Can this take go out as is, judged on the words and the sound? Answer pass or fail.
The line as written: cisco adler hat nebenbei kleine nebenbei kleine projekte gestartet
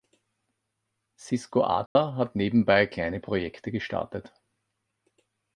fail